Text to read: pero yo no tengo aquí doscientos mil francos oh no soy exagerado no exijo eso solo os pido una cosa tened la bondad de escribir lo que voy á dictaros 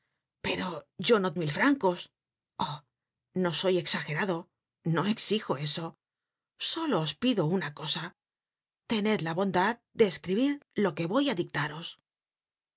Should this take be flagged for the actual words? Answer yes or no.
yes